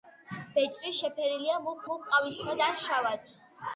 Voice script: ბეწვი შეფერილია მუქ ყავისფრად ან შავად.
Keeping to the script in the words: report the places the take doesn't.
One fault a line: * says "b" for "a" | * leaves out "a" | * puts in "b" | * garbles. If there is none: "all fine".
* puts in "მუქ"